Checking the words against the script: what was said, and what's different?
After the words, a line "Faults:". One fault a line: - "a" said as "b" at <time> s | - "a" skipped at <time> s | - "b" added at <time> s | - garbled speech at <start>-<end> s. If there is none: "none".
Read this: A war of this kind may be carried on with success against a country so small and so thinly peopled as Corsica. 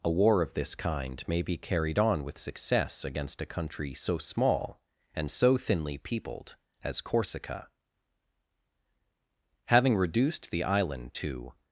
A war of this kind may be carried on with success against a country so small and so thinly peopled as Corsica. Having reduced the island to
Faults:
- "Having reduced the island to" added at 9.7 s